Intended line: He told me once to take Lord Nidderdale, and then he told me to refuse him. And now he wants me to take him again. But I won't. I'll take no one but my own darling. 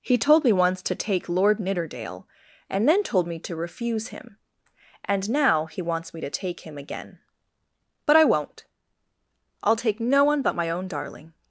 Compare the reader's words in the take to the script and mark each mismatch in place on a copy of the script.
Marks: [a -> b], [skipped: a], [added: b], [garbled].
He told me once to take Lord Nidderdale, and then [skipped: he] told me to refuse him. And now he wants me to take him again. But I won't. I'll take no one but my own darling.